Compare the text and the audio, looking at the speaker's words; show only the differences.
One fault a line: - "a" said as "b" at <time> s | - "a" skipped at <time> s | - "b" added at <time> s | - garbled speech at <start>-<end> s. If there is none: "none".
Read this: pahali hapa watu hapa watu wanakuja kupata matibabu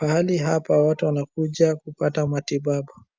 - "hapa watu" skipped at 1.1 s